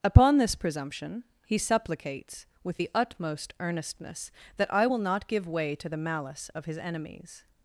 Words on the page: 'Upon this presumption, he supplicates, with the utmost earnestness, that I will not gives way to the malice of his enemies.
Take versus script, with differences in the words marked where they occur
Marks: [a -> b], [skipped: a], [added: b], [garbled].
'Upon this presumption, he supplicates, with the utmost earnestness, that I will not [gives -> give] way to the malice of his enemies.